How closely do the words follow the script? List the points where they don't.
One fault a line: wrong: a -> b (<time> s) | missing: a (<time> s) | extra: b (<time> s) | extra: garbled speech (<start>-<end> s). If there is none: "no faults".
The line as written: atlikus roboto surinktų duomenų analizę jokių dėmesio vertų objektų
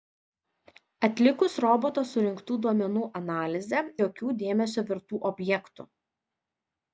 no faults